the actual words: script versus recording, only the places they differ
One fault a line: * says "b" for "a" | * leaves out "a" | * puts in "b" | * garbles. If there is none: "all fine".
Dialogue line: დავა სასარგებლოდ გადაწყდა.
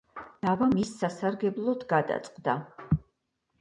* puts in "მის"